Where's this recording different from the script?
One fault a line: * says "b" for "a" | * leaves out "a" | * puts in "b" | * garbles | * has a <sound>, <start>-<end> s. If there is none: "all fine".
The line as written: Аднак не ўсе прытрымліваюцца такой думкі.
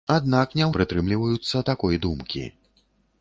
* leaves out "ўсе"